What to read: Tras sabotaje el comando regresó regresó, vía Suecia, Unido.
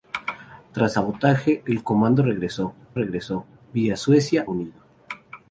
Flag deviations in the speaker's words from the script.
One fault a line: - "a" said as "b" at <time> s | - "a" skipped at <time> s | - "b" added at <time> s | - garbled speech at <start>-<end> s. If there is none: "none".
none